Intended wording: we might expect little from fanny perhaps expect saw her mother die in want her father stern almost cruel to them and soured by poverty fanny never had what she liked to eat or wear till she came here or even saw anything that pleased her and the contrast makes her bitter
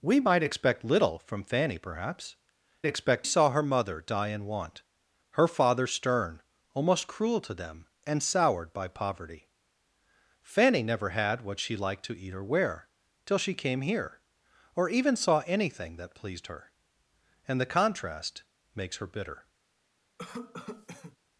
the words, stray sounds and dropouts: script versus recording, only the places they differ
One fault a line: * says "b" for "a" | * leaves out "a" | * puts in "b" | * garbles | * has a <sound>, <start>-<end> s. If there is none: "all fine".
* has a cough, 20.2-21.2 s